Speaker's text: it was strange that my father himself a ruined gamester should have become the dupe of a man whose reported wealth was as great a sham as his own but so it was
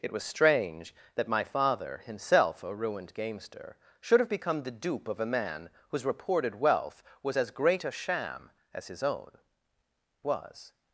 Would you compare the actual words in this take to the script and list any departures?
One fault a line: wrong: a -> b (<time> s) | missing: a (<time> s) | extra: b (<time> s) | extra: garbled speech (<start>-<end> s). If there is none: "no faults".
missing: but so it (9.3 s)